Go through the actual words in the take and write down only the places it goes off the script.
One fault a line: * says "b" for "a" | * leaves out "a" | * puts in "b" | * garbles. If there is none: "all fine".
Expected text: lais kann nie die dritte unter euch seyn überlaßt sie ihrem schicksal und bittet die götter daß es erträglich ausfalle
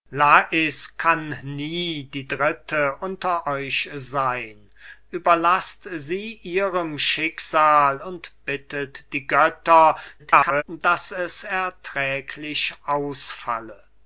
* garbles